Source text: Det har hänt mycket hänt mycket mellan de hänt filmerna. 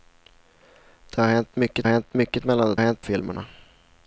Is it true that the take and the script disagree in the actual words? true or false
false